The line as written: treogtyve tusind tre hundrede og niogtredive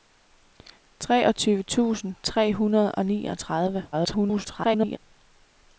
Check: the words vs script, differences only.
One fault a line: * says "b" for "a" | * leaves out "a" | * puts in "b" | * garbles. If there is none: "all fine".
* garbles